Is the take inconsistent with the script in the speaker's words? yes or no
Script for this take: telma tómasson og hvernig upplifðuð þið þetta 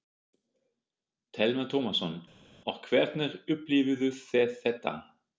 no